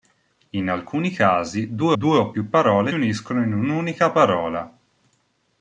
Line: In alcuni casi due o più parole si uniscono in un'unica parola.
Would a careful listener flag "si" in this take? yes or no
yes